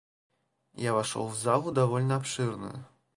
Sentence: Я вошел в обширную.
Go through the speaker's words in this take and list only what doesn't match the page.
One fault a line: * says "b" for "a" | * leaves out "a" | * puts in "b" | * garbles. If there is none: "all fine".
* puts in "залу довольно"